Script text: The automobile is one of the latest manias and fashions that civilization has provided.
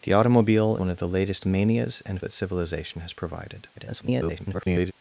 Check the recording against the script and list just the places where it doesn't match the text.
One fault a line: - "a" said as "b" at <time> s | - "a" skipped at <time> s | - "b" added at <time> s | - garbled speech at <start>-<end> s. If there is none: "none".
- "is" skipped at 0.8 s
- "fashions" skipped at 2.2 s
- garbled speech at 3.7-4.9 s